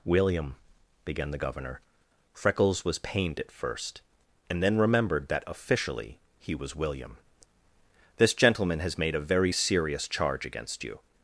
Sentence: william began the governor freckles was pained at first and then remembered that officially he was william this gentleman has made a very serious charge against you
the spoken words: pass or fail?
pass